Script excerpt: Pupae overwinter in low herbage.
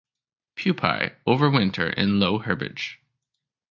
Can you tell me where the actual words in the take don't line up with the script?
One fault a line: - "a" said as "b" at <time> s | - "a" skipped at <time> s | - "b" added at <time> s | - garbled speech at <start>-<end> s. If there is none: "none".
none